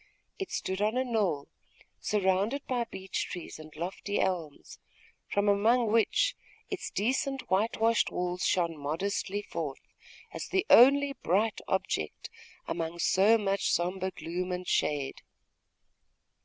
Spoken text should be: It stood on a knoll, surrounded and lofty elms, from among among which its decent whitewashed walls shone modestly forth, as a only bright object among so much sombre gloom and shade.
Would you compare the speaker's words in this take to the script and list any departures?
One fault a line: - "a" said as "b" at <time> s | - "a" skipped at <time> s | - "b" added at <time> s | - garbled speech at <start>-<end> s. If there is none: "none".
- "by beech trees" added at 2.6 s
- "among" skipped at 5.9 s
- "a" said as "the" at 10.5 s